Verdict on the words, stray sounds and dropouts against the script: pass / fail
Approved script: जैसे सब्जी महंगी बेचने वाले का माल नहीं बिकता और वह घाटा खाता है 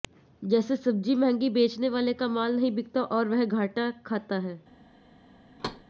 fail